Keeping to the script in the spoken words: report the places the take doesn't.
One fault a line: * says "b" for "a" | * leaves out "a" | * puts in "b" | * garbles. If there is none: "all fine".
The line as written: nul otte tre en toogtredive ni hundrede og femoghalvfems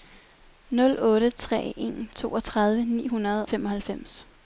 * leaves out "og"